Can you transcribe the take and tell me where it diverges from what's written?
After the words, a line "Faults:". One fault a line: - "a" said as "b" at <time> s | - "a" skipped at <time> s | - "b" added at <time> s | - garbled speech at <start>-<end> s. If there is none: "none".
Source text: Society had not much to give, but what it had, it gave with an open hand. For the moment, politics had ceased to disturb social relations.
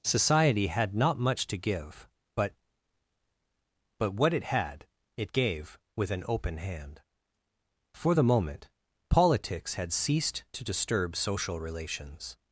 Society had not much to give, but but what it had, it gave with an open hand. For the moment, politics had ceased to disturb social relations.
Faults:
- "but" added at 4.0 s